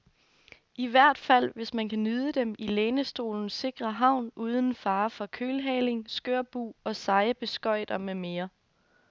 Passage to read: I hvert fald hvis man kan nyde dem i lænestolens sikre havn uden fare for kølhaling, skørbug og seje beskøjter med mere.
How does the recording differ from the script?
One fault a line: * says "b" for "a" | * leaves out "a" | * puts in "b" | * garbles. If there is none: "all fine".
all fine